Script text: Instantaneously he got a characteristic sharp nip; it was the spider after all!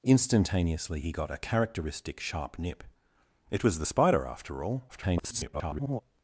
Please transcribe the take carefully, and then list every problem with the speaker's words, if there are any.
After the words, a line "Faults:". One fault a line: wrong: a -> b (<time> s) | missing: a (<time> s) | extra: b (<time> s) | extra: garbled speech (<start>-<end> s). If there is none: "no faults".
Instantaneously he got a characteristic sharp nip; it was the spider after all! [garbled]
Faults:
extra: garbled speech (4.9-6.0 s)